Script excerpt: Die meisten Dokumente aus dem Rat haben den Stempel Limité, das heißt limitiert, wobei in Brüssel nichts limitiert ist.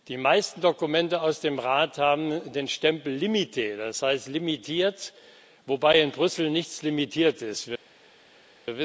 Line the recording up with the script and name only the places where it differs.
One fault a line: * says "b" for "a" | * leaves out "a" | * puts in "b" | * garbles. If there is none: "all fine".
all fine